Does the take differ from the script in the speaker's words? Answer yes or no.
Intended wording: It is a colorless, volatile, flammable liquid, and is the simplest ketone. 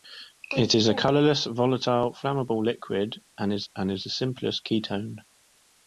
yes